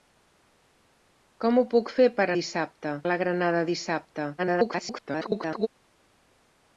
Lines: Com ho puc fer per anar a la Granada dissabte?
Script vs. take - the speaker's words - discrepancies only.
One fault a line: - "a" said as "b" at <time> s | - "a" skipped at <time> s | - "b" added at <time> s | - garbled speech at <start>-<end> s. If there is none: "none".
- "anar" said as "dissabte" at 2.4 s
- garbled speech at 4.4-5.7 s